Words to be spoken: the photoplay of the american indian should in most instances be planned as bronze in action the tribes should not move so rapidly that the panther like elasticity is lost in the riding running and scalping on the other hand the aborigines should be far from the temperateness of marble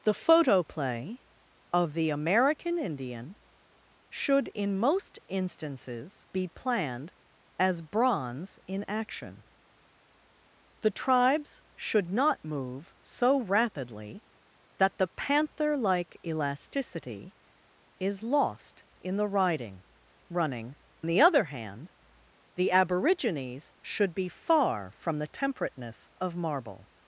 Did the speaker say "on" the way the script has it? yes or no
no